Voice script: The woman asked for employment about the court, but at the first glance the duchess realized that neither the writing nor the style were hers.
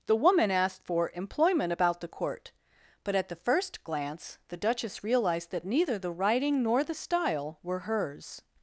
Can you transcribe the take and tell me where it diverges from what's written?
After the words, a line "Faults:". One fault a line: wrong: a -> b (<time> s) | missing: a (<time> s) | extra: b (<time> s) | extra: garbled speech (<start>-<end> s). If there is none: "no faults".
The woman asked for employment about the court, but at the first glance the duchess realized that neither the writing nor the style were hers.
Faults:
no faults